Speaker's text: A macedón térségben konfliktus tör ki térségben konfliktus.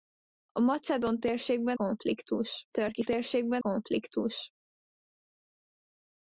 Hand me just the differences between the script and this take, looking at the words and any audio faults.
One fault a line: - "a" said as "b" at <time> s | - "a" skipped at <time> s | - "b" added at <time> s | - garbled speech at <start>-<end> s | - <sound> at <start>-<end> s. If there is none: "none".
none